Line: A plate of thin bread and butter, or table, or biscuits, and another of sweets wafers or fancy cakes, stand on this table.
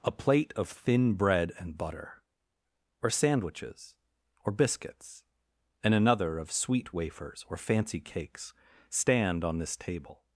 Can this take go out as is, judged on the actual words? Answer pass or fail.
fail